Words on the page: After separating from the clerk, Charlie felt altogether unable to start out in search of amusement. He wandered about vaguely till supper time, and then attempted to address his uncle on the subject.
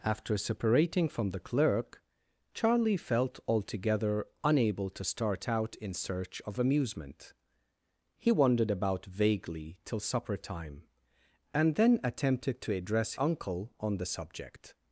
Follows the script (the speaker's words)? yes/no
no